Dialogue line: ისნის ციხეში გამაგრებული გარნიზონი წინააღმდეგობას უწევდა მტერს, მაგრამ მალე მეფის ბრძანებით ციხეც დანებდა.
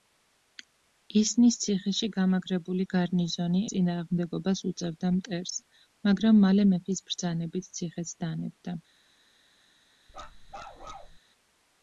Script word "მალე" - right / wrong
right